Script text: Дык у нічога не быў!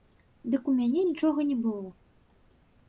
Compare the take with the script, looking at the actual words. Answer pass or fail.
fail